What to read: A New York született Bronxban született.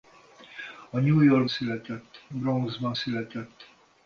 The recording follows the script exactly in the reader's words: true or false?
true